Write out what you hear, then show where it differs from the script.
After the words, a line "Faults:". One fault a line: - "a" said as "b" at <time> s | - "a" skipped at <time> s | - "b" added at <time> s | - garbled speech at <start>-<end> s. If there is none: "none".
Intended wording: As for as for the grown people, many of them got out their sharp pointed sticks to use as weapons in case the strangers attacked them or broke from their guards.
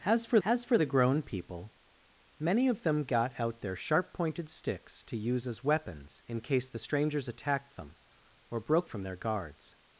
As for as for the grown people, many of them got out their sharp pointed sticks to use as weapons in case the strangers attacked them or broke from their guards.
Faults:
none